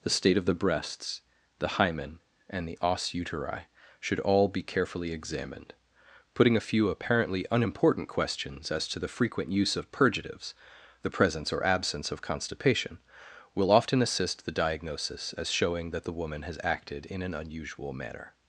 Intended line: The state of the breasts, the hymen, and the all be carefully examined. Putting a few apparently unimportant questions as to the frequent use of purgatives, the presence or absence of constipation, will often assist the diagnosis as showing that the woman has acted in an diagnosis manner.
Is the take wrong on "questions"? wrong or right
right